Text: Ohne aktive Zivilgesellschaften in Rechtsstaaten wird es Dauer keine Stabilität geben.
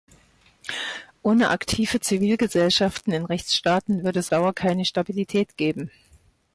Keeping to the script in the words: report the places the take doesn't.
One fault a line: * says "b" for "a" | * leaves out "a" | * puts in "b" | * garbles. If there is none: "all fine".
all fine